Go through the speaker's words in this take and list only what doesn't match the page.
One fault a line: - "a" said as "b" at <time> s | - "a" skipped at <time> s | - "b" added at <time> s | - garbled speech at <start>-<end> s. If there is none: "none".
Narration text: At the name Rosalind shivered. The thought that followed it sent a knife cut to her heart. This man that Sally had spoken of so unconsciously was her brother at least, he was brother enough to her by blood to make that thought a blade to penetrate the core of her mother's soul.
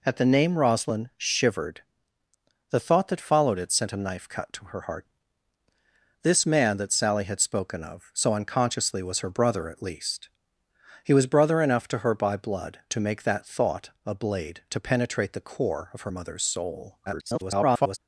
- garbled speech at 17.1-18.0 s